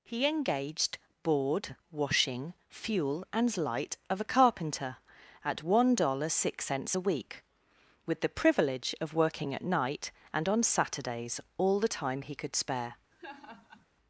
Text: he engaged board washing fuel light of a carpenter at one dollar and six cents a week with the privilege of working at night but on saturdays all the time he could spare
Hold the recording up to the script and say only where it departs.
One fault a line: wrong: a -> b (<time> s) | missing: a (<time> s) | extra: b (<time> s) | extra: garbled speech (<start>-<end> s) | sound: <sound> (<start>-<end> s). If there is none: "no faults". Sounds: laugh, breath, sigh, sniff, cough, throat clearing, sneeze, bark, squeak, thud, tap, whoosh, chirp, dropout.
extra: and (3.3 s)
wrong: but -> and (10.3 s)
sound: laugh (13.1-13.9 s)